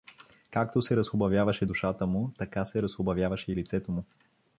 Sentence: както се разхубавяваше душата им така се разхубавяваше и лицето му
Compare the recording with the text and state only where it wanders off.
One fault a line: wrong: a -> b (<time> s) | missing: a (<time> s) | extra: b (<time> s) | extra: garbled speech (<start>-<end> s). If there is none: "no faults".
wrong: им -> му (2.1 s)